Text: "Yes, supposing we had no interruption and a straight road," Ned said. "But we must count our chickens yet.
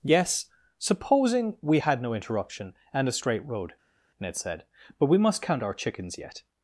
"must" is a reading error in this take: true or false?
false